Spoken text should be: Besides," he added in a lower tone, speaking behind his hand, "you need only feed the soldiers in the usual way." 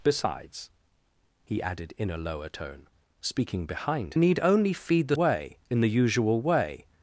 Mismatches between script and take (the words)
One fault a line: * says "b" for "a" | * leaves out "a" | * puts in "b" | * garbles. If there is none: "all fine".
* leaves out "his hand you"
* says "way" for "soldiers"